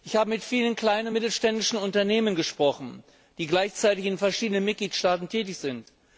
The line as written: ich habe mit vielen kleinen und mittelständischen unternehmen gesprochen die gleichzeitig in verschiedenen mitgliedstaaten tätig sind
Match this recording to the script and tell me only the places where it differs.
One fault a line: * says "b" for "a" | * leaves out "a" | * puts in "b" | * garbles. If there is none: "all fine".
all fine